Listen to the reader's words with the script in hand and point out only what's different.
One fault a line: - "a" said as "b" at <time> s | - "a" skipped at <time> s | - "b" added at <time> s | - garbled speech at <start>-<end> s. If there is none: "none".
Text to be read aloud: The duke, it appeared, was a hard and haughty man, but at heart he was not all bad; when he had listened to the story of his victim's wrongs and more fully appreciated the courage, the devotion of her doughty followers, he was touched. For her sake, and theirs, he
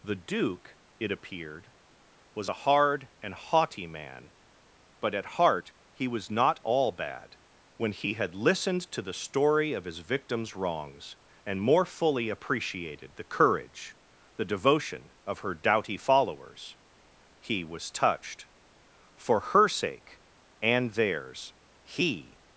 none